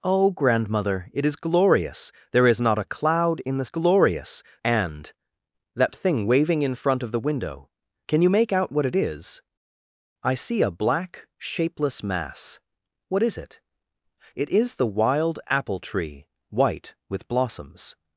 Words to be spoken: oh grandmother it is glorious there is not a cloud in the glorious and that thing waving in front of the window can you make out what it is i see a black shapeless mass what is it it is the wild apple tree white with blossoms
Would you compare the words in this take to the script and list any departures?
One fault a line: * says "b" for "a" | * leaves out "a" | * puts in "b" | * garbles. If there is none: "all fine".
all fine